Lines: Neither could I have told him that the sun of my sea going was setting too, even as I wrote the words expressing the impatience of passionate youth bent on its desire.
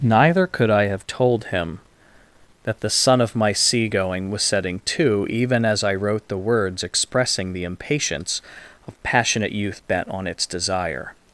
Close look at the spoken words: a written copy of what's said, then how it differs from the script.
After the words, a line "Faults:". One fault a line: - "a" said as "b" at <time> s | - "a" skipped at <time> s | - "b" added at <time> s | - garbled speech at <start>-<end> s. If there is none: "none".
Neither could I have told him that the sun of my sea going was setting too, even as I wrote the words expressing the impatience of passionate youth bent on its desire.
Faults:
none